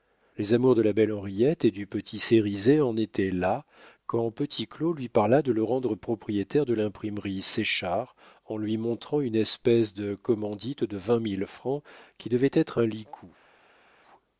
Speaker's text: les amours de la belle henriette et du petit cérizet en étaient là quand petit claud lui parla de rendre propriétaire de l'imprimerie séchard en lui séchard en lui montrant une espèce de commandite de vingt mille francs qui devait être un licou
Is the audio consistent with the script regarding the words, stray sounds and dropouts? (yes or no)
no